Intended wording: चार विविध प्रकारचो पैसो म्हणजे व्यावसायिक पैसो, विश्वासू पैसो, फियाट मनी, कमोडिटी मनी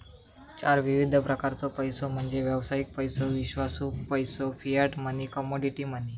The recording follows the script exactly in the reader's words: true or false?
true